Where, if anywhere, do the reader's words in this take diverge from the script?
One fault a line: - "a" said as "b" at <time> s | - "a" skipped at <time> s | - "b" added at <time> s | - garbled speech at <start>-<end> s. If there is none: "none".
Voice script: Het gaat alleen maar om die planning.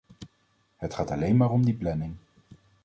none